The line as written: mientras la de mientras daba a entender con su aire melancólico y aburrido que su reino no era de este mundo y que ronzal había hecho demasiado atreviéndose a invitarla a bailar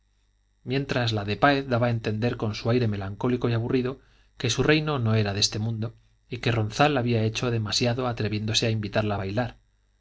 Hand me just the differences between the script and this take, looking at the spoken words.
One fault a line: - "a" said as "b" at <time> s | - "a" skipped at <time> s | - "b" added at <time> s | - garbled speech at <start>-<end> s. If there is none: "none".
- "mientras" said as "páez" at 1.4 s